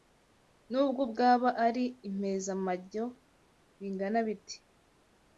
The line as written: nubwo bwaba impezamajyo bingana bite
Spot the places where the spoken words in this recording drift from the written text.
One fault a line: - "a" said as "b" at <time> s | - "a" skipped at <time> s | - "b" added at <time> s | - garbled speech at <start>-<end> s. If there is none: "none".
- "ari" added at 1.6 s